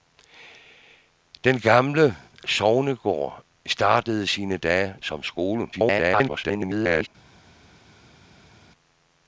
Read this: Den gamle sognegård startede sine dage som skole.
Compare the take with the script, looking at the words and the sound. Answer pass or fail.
fail